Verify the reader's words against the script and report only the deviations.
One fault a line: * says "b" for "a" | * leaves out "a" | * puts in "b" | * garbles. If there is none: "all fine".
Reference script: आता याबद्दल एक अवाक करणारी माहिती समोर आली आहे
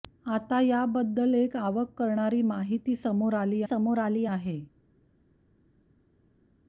* puts in "समोर आली"